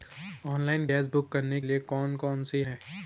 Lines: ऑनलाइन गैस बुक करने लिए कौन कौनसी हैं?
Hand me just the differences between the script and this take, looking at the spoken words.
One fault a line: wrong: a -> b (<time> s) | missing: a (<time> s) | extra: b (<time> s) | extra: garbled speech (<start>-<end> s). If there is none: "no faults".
no faults